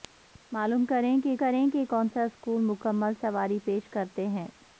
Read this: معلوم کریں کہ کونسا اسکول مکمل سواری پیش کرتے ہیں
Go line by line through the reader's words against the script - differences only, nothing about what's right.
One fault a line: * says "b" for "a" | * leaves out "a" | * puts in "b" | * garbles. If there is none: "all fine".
* puts in "کریں کہ"